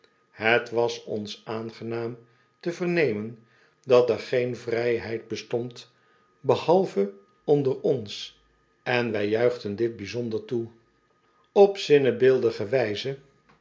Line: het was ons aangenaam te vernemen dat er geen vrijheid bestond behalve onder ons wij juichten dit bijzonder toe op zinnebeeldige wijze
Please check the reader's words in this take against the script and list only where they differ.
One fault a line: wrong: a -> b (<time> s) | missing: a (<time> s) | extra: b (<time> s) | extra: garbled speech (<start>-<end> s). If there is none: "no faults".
extra: en (8.8 s)